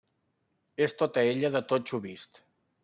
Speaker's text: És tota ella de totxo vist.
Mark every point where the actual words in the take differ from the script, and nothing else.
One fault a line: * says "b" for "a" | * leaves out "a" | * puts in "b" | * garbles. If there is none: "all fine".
all fine